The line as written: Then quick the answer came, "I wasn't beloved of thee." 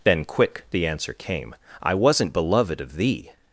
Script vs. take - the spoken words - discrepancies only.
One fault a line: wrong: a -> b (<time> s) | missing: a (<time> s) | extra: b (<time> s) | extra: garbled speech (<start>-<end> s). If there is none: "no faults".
no faults